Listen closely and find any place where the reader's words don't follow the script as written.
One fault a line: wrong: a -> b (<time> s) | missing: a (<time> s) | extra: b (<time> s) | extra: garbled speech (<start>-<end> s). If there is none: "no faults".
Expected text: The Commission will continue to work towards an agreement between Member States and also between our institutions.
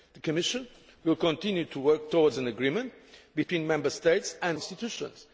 missing: also between our (4.6 s)